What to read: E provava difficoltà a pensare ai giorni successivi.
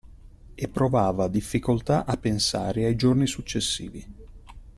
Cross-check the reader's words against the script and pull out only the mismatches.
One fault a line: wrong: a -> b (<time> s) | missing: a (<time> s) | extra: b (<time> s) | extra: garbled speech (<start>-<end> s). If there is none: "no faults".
no faults